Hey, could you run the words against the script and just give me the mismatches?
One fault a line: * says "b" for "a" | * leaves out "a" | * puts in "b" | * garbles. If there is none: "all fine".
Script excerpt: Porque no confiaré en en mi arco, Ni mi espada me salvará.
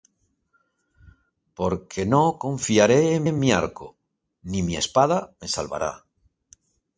all fine